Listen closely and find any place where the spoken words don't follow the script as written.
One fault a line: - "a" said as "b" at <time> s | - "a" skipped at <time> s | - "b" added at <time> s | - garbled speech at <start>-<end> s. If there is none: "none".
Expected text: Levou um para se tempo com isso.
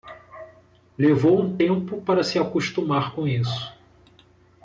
- "tempo" added at 1.6 s
- "tempo" said as "acostumar" at 2.4 s